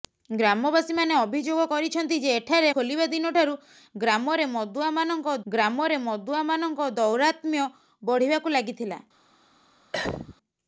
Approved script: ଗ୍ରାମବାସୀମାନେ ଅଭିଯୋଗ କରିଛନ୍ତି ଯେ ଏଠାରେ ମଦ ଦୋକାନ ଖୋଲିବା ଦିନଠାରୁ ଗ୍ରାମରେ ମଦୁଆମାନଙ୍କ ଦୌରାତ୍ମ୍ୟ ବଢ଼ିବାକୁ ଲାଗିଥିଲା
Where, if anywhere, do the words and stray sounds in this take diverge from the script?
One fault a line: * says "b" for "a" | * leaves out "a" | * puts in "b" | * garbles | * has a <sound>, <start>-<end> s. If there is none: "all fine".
* says "ଖୋଲିବା ଦିନଠାରୁ ଗ୍ରାମରେ ମଦୁଆମାନଙ୍କ" for "ମଦ ଦୋକାନ ଖୋଲିବା ଦିନଠାରୁ"
* has a cough, 9.9-10.4 s